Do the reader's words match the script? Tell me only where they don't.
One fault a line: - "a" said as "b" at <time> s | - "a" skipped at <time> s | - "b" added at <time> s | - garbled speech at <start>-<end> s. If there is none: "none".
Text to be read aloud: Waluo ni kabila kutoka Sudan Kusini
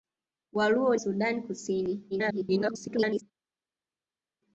- "ni kabila kutoka" skipped at 0.9 s
- garbled speech at 2.1-3.2 s